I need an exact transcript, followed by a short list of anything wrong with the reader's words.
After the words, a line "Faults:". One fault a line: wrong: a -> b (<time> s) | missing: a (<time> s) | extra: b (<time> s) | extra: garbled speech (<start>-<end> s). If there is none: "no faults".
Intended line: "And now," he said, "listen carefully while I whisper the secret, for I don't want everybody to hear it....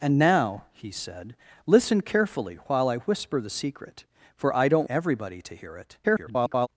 "And now," he said, "listen carefully while I whisper the secret, for I don't everybody to hear it.... [garbled]
Faults:
missing: want (4.9 s)
extra: garbled speech (6.0-6.7 s)